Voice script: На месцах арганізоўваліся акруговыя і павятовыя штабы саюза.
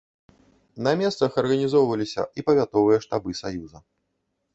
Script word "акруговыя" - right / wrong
wrong